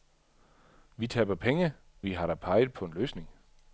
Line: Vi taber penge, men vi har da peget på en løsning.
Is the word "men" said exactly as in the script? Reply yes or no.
no